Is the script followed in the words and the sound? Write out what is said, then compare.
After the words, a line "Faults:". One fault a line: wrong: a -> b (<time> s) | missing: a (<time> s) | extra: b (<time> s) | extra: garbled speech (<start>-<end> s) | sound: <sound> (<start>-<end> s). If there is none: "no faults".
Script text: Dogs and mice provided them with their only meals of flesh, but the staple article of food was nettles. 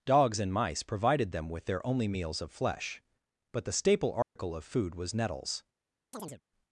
Dogs and mice provided them with their only meals of flesh, but the staple article of food was nettles.
Faults:
sound: dropout (4.2-4.4 s)
sound: chirp (6.1-6.4 s)